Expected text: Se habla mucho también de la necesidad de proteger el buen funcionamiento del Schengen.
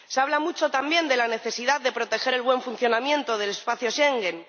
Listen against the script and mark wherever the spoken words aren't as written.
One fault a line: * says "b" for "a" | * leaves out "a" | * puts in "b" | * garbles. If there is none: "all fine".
* puts in "espacio"